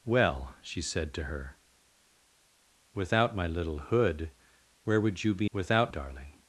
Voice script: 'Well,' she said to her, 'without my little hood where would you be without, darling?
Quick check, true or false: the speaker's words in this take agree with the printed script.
true